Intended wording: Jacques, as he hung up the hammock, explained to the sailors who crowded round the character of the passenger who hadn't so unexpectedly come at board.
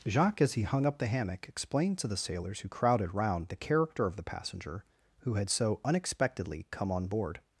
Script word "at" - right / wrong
wrong